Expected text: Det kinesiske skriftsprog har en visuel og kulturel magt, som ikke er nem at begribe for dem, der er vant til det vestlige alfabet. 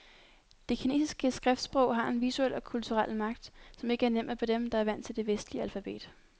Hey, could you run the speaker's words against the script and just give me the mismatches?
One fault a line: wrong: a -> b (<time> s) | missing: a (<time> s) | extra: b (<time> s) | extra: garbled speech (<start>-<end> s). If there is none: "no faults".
missing: begribe (4.4 s)